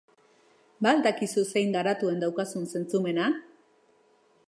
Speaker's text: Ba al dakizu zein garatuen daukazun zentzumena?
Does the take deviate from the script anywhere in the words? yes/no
no